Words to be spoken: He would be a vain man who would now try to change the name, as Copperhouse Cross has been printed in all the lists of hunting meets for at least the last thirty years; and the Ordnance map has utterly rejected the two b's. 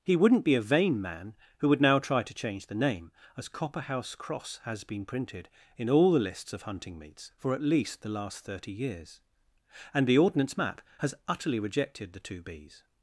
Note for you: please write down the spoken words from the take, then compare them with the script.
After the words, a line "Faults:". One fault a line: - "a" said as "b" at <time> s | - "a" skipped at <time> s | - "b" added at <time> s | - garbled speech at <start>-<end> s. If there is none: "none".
He wouldn't be a vain man who would now try to change the name, as Copperhouse Cross has been printed in all the lists of hunting meets for at least the last thirty years; and the Ordnance map has utterly rejected the two b's.
Faults:
- "would" said as "wouldn't" at 0.1 s